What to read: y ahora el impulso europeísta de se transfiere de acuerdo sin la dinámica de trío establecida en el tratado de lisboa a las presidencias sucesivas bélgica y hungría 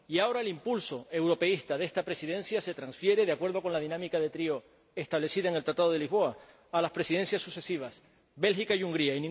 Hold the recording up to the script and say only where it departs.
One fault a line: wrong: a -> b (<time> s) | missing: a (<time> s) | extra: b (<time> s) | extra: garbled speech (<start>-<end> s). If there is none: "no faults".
extra: esta presidencia (1.9 s)
wrong: sin -> con (3.6 s)